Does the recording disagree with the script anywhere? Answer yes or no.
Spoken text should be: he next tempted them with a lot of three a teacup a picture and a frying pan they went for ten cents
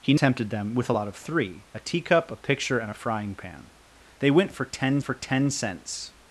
yes